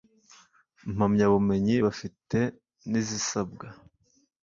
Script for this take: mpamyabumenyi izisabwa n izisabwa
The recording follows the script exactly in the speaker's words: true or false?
false